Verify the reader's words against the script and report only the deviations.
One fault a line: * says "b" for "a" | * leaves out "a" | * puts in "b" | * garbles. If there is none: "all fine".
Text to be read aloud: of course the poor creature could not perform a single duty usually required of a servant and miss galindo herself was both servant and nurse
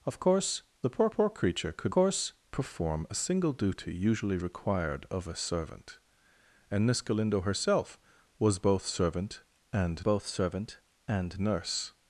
* puts in "poor"
* says "course" for "not"
* puts in "both servant and"